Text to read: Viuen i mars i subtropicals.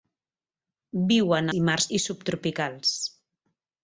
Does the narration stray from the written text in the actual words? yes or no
no